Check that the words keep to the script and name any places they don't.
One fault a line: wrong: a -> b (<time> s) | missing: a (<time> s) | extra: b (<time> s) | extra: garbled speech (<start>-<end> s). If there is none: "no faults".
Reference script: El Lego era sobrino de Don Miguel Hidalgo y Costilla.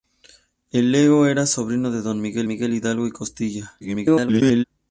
extra: Miguel (2.5 s)
extra: garbled speech (3.8-4.6 s)